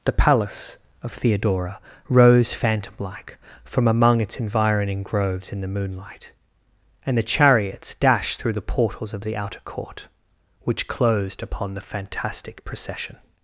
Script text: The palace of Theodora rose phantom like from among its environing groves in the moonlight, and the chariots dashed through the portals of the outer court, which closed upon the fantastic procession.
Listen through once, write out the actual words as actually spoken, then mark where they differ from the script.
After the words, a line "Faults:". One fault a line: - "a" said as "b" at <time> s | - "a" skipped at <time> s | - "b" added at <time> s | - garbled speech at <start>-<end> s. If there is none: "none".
The palace of Theodora rose phantom like from among its environing groves in the moonlight, and the chariots dashed through the portals of the outer court, which closed upon the fantastic procession.
Faults:
none